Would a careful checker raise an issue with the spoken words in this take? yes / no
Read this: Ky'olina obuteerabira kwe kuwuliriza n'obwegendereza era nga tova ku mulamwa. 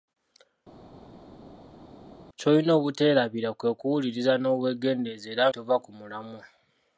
yes